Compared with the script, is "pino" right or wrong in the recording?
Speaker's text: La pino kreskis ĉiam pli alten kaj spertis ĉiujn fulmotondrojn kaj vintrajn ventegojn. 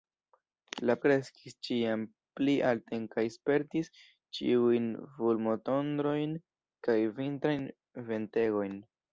wrong